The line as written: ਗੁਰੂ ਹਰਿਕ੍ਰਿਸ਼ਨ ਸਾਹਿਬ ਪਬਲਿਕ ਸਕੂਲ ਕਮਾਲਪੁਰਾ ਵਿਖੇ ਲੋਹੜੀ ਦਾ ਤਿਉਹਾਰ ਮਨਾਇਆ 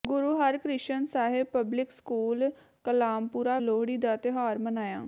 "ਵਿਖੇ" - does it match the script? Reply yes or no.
no